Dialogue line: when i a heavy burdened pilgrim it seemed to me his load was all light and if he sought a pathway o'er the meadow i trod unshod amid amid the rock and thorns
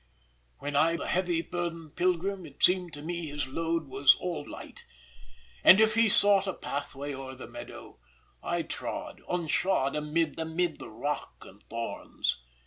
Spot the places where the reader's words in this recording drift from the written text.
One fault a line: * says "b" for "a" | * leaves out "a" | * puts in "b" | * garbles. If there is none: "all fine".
all fine